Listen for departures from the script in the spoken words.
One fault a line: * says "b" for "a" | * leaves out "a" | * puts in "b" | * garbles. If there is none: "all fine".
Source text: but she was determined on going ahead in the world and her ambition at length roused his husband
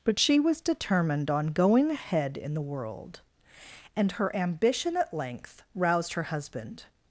* says "her" for "his"